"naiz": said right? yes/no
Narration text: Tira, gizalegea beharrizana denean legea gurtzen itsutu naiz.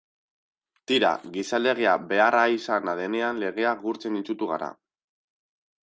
no